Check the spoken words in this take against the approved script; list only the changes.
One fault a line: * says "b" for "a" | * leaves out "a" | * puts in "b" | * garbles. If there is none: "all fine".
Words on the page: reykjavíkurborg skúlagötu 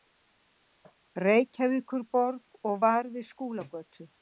* puts in "og var við"